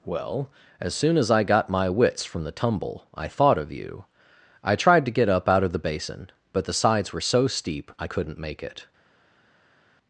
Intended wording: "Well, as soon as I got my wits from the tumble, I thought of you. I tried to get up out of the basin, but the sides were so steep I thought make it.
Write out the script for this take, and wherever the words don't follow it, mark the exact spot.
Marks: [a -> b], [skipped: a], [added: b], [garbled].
"Well, as soon as I got my wits from the tumble, I thought of you. I tried to get up out of the basin, but the sides were so steep I [thought -> couldn't] make it.